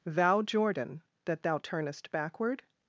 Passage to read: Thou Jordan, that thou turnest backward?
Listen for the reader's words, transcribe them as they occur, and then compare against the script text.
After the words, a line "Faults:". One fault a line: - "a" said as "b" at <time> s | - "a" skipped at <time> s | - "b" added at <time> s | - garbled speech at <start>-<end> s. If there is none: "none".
Thou Jordan, that thou turnest backward?
Faults:
none